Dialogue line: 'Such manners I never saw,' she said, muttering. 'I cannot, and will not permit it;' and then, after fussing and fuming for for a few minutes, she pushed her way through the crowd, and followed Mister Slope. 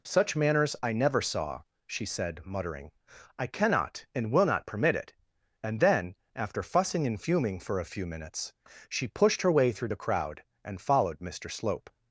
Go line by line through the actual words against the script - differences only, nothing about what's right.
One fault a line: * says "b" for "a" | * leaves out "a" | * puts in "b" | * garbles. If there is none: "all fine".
* leaves out "for"